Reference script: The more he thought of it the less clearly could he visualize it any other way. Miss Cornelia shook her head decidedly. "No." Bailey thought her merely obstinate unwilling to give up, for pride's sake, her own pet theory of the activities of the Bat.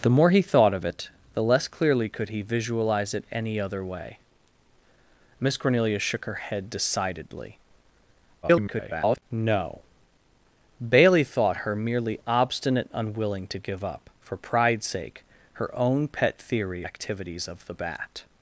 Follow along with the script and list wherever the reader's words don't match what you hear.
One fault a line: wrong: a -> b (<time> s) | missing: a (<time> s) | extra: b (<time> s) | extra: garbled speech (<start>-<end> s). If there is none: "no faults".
extra: garbled speech (8.4-9.2 s)
missing: of the (16.8 s)